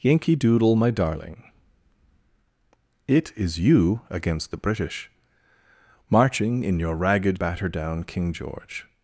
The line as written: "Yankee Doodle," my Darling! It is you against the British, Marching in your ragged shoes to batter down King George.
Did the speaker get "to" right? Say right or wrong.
wrong